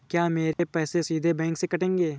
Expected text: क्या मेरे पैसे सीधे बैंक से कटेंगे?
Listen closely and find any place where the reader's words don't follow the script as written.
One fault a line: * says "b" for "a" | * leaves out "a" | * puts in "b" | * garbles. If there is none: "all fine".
all fine